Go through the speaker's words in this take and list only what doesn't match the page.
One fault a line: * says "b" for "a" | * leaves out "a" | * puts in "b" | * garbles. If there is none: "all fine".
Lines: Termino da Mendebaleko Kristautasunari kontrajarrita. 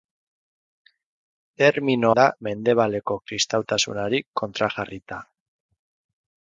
all fine